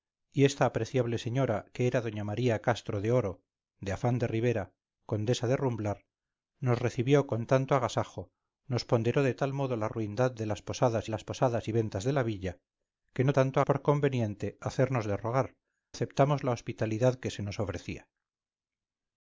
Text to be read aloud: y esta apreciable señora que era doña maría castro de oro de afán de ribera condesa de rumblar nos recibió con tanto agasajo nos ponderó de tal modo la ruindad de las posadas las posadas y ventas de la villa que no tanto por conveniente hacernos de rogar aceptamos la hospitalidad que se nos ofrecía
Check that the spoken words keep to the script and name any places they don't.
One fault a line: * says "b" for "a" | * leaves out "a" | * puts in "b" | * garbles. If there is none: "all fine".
all fine